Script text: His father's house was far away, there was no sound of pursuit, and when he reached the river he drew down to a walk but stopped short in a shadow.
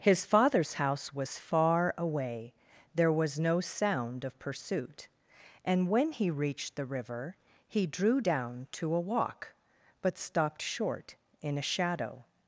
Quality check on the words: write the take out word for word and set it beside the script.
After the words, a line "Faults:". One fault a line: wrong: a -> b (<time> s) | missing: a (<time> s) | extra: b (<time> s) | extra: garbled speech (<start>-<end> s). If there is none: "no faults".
His father's house was far away, there was no sound of pursuit, and when he reached the river he drew down to a walk but stopped short in a shadow.
Faults:
no faults